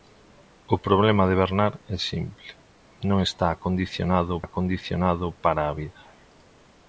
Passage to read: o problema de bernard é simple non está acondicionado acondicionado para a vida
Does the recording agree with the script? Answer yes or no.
yes